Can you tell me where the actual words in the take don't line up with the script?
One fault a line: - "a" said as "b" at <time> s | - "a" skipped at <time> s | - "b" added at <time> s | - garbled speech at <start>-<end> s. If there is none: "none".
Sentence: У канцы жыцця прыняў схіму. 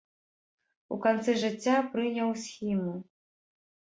none